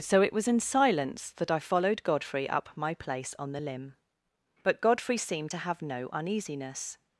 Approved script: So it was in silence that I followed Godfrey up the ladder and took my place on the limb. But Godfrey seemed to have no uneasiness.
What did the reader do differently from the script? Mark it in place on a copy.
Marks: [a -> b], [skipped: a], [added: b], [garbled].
So it was in silence that I followed Godfrey up [skipped: the ladder and took] my place on the limb. But Godfrey seemed to have no uneasiness.